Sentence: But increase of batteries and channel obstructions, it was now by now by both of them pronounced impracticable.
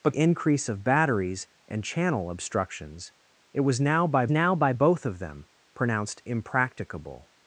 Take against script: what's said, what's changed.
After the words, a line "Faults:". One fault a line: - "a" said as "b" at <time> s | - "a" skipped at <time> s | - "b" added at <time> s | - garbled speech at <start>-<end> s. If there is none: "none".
But increase of batteries and channel obstructions, it was now by now by both of them pronounced impracticable.
Faults:
none